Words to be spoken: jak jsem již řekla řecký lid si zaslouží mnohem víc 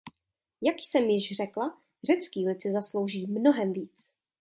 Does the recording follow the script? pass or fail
pass